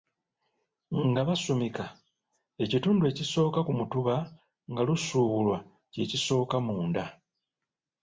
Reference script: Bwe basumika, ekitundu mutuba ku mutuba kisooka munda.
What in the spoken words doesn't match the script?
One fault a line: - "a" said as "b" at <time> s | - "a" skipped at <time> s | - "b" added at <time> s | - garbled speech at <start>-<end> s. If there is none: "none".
- "Bwe" said as "Nga" at 1.1 s
- "mutuba" said as "ekisooka" at 3.1 s
- "nga lusuubulwa kye" added at 4.7 s